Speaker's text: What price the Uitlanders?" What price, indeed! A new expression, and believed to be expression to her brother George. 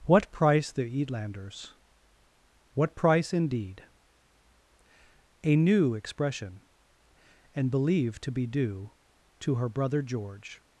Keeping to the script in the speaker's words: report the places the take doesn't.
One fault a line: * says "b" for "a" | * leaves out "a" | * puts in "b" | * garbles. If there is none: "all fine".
* says "due" for "expression"